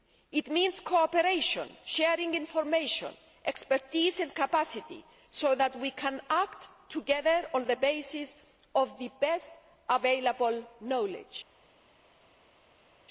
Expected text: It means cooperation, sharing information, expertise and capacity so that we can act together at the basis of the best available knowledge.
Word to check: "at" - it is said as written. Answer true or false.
false